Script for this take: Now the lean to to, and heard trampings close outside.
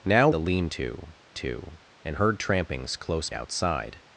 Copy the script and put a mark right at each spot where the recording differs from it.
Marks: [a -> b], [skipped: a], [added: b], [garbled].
Now the lean to to, and heard trampings close outside.